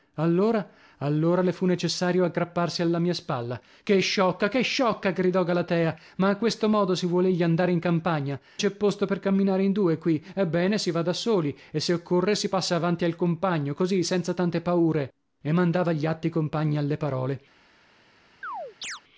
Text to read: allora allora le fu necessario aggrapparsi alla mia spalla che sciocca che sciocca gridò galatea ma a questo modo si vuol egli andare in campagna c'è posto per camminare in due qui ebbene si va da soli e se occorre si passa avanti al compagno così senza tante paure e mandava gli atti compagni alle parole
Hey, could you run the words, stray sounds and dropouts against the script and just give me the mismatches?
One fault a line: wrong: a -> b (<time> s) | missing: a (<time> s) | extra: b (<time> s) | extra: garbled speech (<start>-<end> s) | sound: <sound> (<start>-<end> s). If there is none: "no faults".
sound: chirp (18.4-19.0 s)